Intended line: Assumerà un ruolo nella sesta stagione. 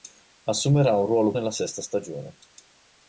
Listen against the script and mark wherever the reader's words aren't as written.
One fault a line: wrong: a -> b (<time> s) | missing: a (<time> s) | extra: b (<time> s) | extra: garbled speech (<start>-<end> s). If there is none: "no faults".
no faults